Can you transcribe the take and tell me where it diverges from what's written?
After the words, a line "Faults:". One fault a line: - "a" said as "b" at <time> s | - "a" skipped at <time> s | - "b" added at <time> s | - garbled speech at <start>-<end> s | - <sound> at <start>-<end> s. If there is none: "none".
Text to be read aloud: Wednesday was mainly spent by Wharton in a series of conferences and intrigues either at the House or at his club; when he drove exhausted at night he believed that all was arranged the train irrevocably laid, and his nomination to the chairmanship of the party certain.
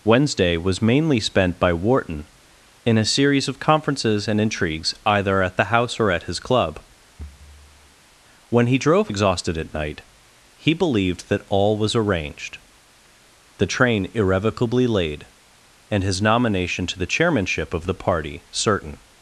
Wednesday was mainly spent by Wharton in a series of conferences and intrigues either at the House or at his club; when he drove exhausted at night he believed that all was arranged the train irrevocably laid, and his nomination to the chairmanship of the party certain.
Faults:
- thud at 7.2-8.0 s